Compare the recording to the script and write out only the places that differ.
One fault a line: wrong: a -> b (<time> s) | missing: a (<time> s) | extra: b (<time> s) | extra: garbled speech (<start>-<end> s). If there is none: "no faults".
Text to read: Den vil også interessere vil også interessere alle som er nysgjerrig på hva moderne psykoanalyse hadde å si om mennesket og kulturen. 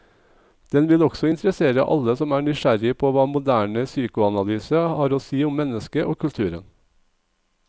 missing: vil også interessere (1.8 s)
wrong: hadde -> har (5.0 s)